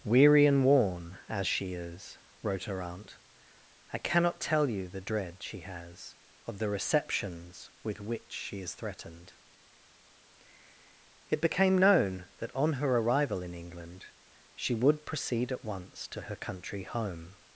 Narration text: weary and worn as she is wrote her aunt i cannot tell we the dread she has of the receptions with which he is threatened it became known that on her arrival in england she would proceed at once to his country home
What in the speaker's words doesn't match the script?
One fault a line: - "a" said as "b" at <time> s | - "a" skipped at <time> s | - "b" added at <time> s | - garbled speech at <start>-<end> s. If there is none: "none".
- "we" said as "you" at 4.7 s
- "he" said as "she" at 8.3 s
- "his" said as "her" at 16.2 s